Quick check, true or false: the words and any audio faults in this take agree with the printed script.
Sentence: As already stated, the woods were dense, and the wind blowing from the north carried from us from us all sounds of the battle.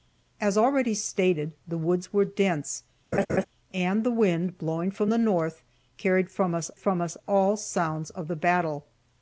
false